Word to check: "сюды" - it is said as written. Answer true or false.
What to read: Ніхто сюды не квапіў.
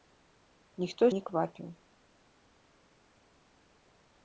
false